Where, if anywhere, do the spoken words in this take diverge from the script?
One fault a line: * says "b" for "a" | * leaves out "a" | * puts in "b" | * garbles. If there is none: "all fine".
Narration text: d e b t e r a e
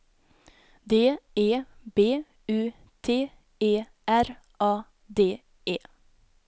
* puts in "u"
* puts in "d"